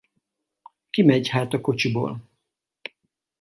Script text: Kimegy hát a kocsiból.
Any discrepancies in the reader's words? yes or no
no